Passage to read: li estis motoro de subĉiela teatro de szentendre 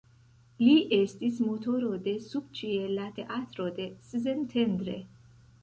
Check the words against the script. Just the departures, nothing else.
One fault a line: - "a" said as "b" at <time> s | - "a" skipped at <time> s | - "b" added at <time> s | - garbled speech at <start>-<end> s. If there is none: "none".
none